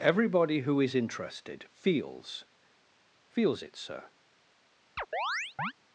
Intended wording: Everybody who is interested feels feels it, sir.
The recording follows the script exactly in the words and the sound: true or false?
false